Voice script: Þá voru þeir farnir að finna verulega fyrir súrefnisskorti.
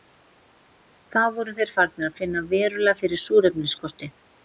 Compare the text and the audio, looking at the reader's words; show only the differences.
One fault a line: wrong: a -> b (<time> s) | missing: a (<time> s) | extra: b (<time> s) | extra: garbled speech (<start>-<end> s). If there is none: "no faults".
no faults